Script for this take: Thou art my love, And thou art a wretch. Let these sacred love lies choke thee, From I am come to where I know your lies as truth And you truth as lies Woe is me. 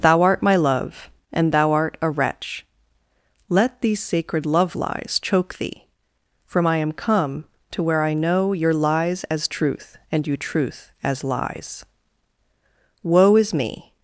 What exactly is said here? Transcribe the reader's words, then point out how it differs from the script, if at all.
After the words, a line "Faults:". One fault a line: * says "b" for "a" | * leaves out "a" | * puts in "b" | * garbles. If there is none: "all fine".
Thou art my love, And thou art a wretch. Let these sacred love lies choke thee, From I am come to where I know your lies as truth And you truth as lies Woe is me.
Faults:
all fine